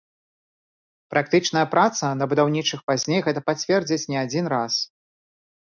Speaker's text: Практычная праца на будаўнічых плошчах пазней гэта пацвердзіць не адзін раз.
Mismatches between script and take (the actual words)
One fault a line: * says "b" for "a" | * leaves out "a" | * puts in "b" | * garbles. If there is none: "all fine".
* leaves out "плошчах"